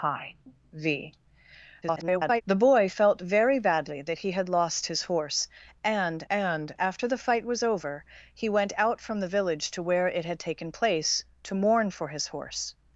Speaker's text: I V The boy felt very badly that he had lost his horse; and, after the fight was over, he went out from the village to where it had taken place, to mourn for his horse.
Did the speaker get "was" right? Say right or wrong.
right